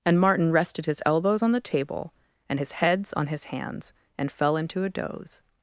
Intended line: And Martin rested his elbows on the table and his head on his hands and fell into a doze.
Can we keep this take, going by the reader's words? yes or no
no